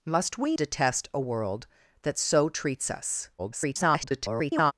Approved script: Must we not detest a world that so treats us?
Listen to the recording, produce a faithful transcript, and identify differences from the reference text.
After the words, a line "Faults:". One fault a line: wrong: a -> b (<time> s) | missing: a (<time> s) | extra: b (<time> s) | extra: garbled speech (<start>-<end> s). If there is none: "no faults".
Must we detest a world that so treats us? [garbled]
Faults:
missing: not (0.6 s)
extra: garbled speech (3.4-4.7 s)